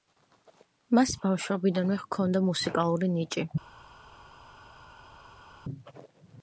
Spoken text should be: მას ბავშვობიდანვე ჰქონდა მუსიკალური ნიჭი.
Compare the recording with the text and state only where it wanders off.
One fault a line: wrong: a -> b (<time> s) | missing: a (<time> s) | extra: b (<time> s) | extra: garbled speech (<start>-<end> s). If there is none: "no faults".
no faults